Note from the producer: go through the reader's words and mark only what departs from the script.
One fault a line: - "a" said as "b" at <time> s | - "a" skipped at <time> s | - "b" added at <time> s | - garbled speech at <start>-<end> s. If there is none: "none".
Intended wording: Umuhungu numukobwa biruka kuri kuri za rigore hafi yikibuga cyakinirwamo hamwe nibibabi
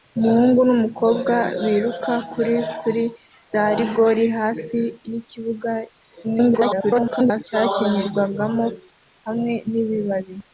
- garbled speech at 6.2-7.4 s